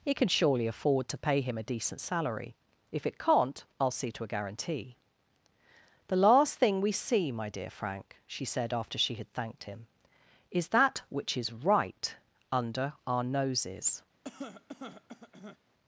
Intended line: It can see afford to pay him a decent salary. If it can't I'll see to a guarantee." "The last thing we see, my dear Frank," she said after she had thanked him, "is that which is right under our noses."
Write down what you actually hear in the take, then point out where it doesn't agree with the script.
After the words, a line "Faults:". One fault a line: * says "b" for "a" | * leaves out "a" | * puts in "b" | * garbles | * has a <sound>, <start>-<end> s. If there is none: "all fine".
It can surely afford to pay him a decent salary. If it can't I'll see to a guarantee." "The last thing we see, my dear Frank," she said after she had thanked him, "is that which is right under our noses."
Faults:
* says "surely" for "see"
* has a cough, 14.2-15.6 s